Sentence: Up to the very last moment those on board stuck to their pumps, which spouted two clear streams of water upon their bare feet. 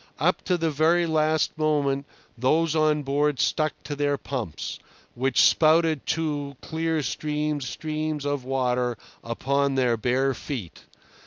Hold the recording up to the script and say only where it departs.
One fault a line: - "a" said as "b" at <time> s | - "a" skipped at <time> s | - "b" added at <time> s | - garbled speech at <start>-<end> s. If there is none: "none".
- "streams" added at 7.6 s